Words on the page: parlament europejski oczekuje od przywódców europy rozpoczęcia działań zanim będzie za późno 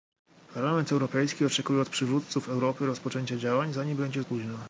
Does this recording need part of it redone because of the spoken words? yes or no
yes